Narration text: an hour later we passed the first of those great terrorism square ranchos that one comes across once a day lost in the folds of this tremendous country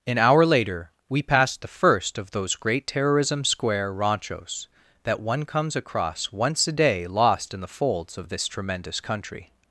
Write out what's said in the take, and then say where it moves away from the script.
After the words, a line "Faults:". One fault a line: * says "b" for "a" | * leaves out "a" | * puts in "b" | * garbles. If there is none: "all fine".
an hour later we passed the first of those great terrorism square ranchos that one comes across once a day lost in the folds of this tremendous country
Faults:
all fine